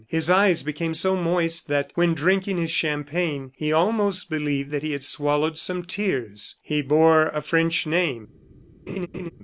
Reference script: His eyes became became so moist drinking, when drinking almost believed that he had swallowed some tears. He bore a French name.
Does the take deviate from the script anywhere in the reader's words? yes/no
yes